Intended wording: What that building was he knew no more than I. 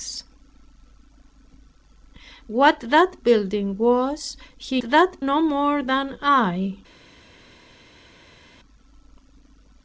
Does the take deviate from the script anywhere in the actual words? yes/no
yes